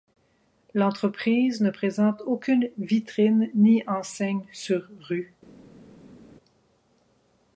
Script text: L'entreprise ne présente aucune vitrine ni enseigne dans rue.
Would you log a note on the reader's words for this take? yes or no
yes